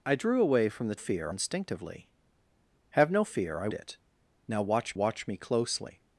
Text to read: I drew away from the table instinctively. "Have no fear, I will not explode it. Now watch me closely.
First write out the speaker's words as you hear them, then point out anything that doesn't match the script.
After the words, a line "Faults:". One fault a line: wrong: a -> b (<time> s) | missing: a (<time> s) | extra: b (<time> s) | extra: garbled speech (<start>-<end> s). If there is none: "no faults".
I drew away from the fear instinctively. "Have no fear, I it. Now watch watch me closely.
Faults:
wrong: table -> fear (1.0 s)
missing: will not explode (3.7 s)
extra: watch (4.9 s)